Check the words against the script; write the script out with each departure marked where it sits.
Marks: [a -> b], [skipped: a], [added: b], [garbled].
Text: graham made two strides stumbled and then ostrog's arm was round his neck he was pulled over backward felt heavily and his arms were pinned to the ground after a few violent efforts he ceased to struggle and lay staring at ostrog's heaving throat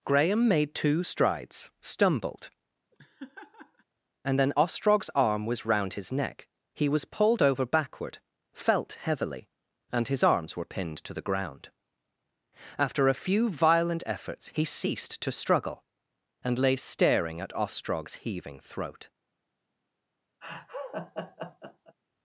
graham made two strides stumbled and then ostrog's arm was round his neck he was pulled over backward felt heavily and his arms were pinned to the ground after a few violent efforts he ceased to struggle and lay staring at ostrog's heaving throat